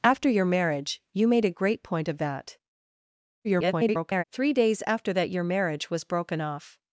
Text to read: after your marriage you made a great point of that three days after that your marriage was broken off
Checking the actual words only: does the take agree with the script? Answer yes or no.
no